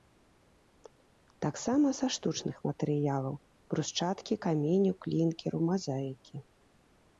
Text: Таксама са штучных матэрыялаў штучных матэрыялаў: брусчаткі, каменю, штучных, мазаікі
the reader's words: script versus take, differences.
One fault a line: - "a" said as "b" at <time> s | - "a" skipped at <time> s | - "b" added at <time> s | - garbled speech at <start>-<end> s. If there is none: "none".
- "штучных матэрыялаў" skipped at 3.4 s
- "штучных" said as "клінкеру" at 5.1 s